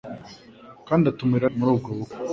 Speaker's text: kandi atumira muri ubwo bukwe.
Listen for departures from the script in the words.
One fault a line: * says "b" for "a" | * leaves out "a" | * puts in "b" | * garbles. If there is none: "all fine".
all fine